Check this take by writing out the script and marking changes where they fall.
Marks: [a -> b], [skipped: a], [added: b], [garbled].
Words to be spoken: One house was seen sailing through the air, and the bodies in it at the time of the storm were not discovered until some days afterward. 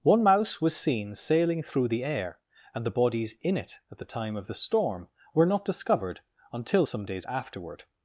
One [house -> mouse] was seen sailing through the air, and the bodies in it at the time of the storm were not discovered until some days afterward.